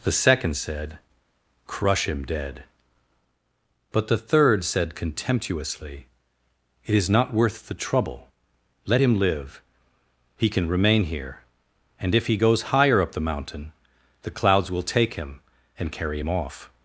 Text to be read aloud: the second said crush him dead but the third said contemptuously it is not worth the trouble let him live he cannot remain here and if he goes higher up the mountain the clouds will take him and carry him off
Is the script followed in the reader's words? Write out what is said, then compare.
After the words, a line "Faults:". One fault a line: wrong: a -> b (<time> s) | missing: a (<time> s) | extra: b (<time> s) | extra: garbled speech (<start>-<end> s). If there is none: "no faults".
the second said crush him dead but the third said contemptuously it is not worth the trouble let him live he can remain here and if he goes higher up the mountain the clouds will take him and carry him off
Faults:
wrong: cannot -> can (10.5 s)